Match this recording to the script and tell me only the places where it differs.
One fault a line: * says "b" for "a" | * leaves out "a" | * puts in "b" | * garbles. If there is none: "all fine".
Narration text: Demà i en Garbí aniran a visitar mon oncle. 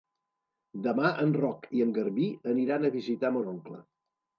* puts in "en Roc"